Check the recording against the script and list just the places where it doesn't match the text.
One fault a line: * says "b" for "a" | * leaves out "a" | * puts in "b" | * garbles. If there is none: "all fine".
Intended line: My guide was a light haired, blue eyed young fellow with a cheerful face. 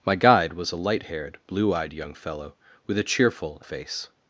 all fine